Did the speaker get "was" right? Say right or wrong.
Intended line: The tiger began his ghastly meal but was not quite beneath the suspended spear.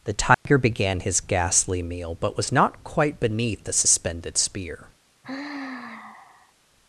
right